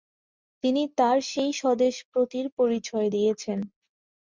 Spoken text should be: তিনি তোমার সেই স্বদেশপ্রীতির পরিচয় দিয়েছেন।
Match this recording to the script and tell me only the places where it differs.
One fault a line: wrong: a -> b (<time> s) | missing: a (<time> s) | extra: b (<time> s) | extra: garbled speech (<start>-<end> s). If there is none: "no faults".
wrong: তোমার -> তার (1.0 s)